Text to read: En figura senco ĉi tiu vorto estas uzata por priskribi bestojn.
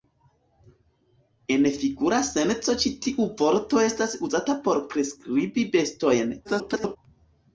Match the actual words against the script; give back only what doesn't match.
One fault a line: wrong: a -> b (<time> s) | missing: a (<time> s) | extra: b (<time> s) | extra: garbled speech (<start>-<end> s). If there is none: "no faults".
extra: garbled speech (6.4-7.0 s)